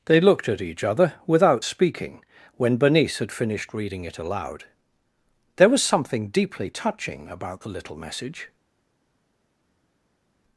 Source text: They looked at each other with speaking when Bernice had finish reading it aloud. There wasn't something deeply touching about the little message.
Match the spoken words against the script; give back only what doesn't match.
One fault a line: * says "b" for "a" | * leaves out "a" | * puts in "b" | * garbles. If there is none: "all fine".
* says "without" for "with"
* says "finished" for "finish"
* says "was" for "wasn't"